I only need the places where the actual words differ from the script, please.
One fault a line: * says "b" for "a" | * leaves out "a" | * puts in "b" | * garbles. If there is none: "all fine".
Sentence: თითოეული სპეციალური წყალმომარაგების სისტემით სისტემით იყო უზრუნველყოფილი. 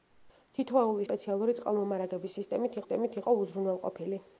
all fine